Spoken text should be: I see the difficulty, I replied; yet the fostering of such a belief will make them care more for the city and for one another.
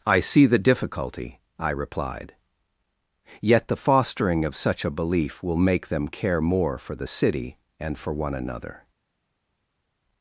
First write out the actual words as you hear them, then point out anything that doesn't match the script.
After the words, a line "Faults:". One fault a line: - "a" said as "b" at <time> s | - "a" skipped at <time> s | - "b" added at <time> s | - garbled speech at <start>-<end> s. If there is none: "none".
I see the difficulty, I replied; yet the fostering of such a belief will make them care more for the city and for one another.
Faults:
none